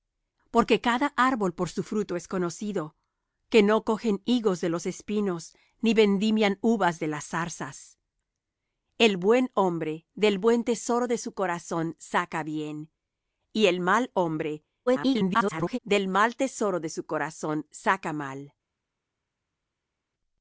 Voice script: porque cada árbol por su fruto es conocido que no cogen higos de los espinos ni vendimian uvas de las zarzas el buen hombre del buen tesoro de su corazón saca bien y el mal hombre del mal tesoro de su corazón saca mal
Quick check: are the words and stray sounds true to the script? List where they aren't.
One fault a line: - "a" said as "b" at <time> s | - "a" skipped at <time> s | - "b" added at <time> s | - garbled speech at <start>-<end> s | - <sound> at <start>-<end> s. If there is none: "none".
- garbled speech at 14.9-15.8 s